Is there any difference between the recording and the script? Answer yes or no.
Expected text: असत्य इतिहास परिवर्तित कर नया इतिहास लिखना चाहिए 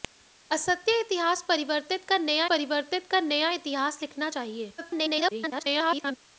yes